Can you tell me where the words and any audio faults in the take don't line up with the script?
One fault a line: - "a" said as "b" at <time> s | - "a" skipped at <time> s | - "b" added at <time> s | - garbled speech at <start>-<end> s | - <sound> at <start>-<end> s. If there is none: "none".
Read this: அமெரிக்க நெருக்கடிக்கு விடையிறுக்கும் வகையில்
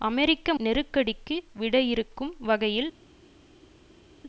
none